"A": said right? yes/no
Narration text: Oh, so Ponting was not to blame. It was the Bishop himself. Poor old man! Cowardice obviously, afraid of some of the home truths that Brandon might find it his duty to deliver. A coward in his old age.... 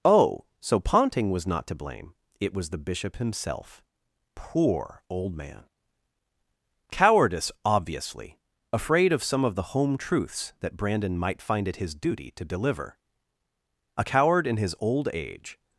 yes